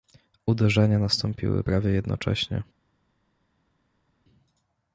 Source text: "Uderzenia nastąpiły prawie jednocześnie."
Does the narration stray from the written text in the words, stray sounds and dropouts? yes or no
no